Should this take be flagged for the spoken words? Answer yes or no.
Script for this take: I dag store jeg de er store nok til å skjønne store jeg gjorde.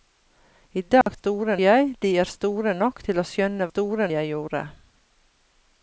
no